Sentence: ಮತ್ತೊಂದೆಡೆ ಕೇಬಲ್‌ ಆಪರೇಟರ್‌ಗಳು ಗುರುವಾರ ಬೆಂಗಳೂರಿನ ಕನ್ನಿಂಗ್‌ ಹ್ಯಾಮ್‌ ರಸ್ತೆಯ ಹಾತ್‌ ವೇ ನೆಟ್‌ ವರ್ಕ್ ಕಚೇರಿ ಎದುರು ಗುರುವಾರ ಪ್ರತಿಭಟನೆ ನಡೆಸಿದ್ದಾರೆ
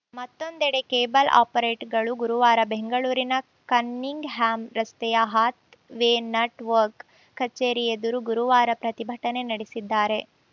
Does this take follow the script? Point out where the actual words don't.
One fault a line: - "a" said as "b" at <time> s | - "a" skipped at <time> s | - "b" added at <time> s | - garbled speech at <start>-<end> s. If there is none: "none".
none